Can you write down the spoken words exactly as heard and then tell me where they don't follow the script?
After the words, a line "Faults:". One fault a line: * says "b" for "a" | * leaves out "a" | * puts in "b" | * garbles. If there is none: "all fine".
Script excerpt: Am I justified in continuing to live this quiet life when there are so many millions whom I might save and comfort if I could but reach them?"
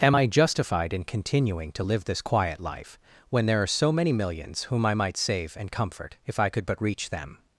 Am I justified in continuing to live this quiet life when there are so many millions whom I might save and comfort if I could but reach them?"
Faults:
all fine